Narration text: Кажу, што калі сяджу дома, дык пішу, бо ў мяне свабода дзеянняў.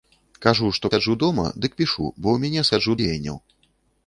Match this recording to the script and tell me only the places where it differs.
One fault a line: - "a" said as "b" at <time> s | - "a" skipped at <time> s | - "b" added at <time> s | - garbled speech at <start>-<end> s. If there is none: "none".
- "калі" skipped at 0.9 s
- "свабода" said as "сяджу" at 2.7 s